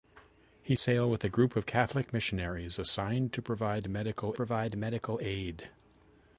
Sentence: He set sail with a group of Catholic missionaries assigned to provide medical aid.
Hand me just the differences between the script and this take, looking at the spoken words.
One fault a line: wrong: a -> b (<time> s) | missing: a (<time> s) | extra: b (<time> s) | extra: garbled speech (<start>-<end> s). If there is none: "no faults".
missing: set (0.8 s)
extra: provide medical (4.3 s)